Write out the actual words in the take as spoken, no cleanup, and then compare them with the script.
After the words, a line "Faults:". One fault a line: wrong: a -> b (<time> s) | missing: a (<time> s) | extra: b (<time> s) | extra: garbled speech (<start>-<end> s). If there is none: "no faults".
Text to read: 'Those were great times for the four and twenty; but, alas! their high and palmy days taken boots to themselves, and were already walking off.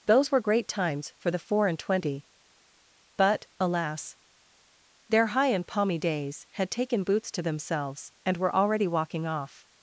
'Those were great times for the four and twenty; but, alas! their high and palmy days had taken boots to themselves, and were already walking off.
Faults:
extra: had (6.5 s)